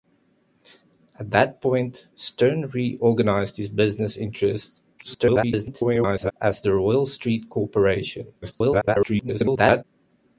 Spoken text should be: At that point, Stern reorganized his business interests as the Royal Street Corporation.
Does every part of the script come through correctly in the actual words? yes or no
no